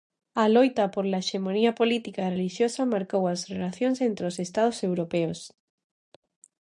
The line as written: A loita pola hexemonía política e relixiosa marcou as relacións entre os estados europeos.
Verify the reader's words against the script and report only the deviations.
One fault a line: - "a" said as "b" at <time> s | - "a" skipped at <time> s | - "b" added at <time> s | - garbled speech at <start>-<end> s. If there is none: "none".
none